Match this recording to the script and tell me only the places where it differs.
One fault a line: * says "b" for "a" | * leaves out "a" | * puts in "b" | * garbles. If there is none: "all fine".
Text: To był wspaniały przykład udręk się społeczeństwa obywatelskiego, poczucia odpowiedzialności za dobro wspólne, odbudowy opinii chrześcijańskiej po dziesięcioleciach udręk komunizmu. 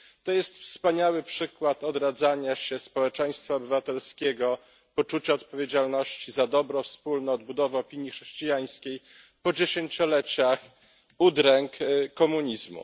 * says "jest" for "był"
* says "odradzania" for "udręk"